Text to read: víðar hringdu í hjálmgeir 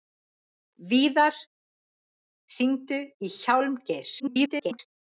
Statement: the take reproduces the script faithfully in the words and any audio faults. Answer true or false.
false